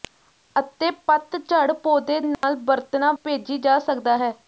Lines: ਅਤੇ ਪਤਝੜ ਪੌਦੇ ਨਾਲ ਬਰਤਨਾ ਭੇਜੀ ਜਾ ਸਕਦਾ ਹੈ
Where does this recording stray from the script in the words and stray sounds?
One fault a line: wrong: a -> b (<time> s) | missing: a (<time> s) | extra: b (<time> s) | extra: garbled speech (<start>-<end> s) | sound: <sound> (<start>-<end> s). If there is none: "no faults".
sound: dropout (2.3-2.4 s)